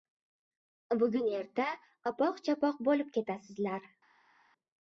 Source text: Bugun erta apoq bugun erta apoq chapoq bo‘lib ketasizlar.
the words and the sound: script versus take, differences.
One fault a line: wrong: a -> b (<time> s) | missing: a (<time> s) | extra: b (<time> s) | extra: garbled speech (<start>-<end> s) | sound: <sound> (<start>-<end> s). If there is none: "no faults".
missing: bugun erta apoq (2.4 s)